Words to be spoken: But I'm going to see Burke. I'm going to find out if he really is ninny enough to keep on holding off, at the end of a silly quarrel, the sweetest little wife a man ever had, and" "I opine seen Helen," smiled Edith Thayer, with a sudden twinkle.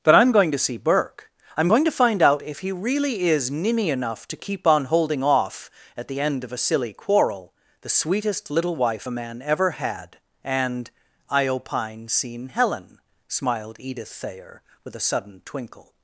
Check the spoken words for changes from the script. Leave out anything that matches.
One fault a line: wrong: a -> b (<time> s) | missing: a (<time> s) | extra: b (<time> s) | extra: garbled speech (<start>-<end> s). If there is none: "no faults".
no faults